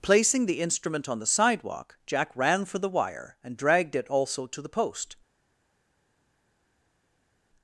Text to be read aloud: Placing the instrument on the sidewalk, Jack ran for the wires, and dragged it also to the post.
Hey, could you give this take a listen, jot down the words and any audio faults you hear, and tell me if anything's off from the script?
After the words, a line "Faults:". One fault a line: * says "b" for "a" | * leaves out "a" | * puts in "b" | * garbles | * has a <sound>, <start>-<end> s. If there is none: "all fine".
Placing the instrument on the sidewalk, Jack ran for the wire, and dragged it also to the post.
Faults:
* says "wire" for "wires"